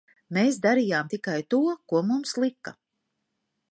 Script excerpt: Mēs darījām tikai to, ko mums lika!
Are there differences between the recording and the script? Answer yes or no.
no